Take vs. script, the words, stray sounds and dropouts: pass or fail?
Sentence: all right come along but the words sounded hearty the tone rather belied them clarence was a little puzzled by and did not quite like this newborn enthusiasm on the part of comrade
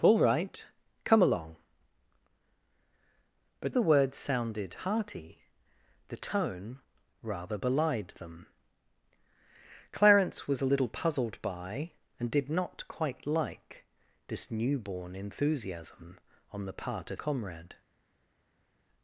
pass